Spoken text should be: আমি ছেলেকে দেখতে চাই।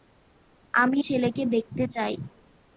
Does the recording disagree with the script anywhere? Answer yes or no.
no